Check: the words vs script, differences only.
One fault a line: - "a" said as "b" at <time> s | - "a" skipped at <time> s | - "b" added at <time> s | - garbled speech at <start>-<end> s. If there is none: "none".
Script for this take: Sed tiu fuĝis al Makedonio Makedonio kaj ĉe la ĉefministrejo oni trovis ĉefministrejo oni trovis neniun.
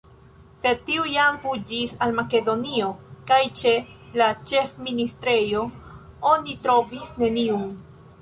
- "jam" added at 1.1 s
- "Makedonio" skipped at 2.9 s
- "ĉefministrejo oni trovis" skipped at 7.2 s